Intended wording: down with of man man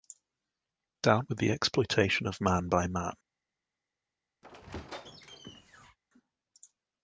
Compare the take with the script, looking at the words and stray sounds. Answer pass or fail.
fail